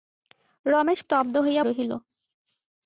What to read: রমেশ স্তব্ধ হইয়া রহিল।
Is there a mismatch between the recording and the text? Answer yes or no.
no